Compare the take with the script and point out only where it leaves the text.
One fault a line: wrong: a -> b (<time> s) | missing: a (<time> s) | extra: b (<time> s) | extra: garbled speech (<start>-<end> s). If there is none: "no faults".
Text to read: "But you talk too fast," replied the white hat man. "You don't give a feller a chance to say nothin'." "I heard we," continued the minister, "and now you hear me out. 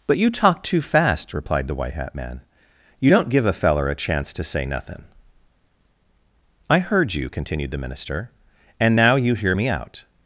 wrong: we -> you (7.1 s)